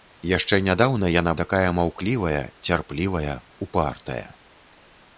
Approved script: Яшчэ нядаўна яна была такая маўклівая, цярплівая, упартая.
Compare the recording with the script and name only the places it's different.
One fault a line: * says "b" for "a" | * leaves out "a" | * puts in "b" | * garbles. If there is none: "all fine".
* leaves out "была"